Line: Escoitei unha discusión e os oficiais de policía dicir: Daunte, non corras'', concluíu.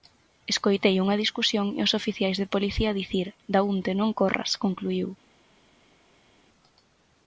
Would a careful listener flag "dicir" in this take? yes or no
no